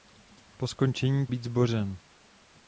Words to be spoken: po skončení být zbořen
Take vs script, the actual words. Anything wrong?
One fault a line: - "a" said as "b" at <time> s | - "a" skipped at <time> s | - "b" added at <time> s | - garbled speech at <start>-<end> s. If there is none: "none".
none